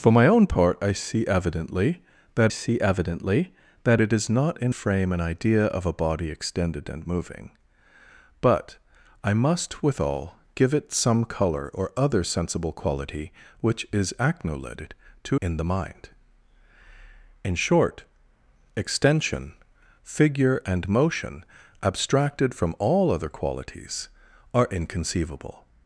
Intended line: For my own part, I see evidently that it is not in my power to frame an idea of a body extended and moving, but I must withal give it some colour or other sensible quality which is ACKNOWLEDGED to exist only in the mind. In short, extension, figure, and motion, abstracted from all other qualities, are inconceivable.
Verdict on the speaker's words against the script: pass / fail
fail